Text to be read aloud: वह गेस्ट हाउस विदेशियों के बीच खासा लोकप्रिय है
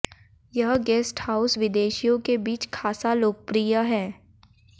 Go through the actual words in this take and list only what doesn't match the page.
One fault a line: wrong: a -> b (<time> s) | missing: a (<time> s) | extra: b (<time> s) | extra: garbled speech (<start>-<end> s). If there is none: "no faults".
wrong: वह -> यह (0.5 s)